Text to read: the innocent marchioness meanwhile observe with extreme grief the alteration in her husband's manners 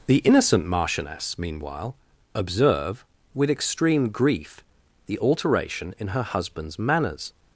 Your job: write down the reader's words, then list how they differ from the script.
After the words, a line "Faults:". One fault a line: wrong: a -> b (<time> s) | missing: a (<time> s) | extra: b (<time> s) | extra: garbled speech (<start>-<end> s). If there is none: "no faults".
the innocent marchioness meanwhile observe with extreme grief the alteration in her husband's manners
Faults:
no faults